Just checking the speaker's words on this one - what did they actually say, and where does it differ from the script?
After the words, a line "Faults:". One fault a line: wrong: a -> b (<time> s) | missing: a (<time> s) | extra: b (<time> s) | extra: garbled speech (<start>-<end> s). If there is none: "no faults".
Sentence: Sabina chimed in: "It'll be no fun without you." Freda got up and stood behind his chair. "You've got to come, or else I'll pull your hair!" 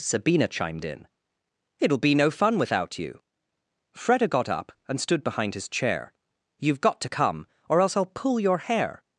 Sabina chimed in: "It'll be no fun without you." Freda got up and stood behind his chair. "You've got to come, or else I'll pull your hair!"
Faults:
no faults